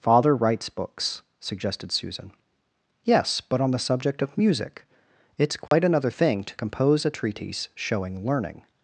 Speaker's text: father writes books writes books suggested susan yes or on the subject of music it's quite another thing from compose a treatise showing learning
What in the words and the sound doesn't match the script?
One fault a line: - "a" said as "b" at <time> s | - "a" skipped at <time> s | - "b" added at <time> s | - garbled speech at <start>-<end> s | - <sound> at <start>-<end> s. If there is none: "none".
- "writes books" skipped at 1.2 s
- "or" said as "but" at 3.4 s
- dropout at 5.7-5.7 s
- "from" said as "to" at 6.5 s